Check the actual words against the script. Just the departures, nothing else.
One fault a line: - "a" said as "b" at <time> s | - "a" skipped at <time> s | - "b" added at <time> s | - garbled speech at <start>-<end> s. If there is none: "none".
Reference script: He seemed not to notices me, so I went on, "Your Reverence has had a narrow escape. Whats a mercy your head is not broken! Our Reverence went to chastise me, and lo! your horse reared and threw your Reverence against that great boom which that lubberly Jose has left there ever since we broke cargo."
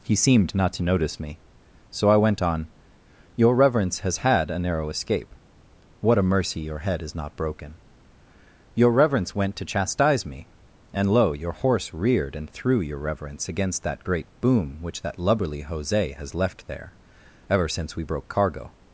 - "notices" said as "notice" at 0.8 s
- "Whats" said as "What" at 6.0 s
- "Our" said as "Your" at 8.7 s